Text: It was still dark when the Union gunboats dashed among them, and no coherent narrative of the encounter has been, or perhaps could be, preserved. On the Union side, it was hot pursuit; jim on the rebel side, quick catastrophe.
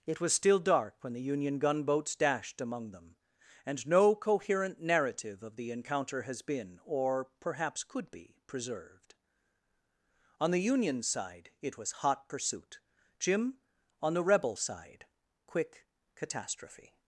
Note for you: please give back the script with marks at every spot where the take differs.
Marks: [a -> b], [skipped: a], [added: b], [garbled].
It was still dark when the Union gunboats dashed among them, and no coherent narrative of the encounter has been, or perhaps could be, preserved. On the Union side, it was hot pursuit; jim on the rebel side, quick catastrophe.